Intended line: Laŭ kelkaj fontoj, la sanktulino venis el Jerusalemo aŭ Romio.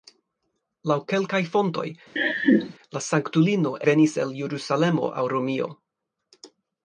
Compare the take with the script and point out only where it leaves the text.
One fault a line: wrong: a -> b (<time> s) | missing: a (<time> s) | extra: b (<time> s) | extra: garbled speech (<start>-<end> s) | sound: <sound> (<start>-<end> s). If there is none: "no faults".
sound: laugh (2.2-2.7 s)